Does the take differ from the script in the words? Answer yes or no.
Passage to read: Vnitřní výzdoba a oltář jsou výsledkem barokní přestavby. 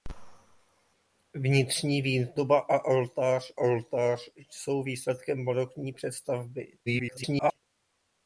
yes